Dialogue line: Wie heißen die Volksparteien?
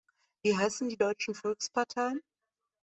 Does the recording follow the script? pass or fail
fail